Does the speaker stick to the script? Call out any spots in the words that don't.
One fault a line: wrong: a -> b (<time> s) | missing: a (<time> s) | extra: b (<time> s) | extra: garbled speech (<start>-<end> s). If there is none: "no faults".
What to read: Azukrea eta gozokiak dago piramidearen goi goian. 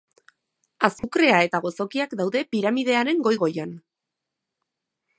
wrong: dago -> daude (2.2 s)